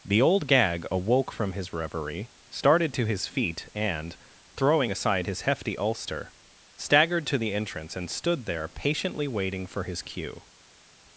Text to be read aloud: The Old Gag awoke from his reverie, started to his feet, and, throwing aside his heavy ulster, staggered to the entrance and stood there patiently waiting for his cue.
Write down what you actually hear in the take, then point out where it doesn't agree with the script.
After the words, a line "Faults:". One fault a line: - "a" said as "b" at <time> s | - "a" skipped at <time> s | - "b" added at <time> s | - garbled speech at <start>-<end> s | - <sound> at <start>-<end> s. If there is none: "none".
The Old Gag awoke from his reverie, started to his feet, and, throwing aside his hefty ulster, staggered to the entrance and stood there patiently waiting for his cue.
Faults:
- "heavy" said as "hefty" at 5.4 s